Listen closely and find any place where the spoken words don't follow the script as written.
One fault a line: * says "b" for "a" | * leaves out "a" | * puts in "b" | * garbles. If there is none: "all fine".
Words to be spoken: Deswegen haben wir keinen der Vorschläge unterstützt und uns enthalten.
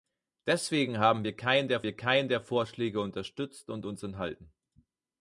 * puts in "wir keinen der"